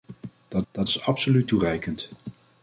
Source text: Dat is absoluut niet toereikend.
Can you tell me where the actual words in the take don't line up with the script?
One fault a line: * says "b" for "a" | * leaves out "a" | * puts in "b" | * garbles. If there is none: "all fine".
* puts in "dat"
* leaves out "niet"